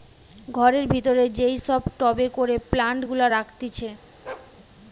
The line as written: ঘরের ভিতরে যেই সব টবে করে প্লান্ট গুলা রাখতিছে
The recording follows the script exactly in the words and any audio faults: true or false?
false